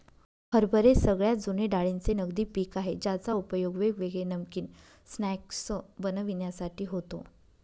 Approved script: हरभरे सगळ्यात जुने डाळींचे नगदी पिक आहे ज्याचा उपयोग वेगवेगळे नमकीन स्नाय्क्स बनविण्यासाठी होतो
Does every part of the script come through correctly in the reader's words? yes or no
yes